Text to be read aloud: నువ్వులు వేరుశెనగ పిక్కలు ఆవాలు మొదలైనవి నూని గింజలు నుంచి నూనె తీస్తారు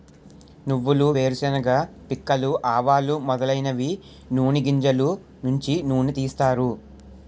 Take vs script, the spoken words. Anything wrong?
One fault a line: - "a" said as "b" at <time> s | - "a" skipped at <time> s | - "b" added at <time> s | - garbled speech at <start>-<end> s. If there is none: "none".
none